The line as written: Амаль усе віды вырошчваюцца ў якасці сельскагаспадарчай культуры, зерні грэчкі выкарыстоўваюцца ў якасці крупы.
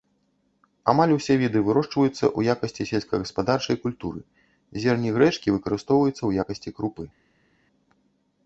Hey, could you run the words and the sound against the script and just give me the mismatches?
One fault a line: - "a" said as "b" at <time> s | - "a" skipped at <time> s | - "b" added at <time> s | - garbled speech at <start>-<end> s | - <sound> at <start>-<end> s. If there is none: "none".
none